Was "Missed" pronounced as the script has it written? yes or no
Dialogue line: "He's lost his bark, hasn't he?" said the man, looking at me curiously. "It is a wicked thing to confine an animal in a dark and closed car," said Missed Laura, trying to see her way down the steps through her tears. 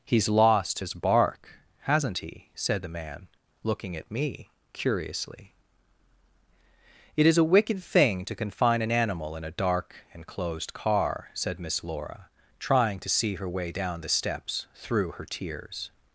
no